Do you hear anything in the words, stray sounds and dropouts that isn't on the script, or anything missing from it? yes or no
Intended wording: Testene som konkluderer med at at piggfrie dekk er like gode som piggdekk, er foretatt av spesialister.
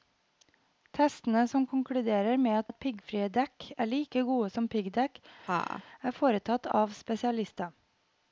yes